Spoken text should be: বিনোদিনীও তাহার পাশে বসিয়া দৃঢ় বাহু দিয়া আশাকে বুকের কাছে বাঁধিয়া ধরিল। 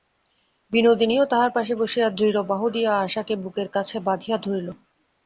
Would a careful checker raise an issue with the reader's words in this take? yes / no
no